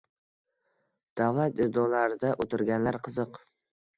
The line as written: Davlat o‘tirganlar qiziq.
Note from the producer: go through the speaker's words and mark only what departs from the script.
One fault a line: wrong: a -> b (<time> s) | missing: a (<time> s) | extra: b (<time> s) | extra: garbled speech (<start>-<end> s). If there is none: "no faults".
extra: idoralarida (1.6 s)